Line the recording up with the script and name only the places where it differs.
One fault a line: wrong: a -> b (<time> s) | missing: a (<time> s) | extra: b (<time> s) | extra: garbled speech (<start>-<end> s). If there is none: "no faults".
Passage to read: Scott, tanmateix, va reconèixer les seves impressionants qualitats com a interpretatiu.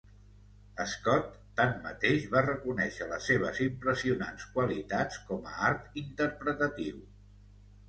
extra: art (5.7 s)